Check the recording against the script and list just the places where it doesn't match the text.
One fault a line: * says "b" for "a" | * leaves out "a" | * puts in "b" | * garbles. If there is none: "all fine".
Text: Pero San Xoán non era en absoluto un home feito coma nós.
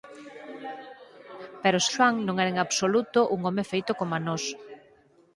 * leaves out "San"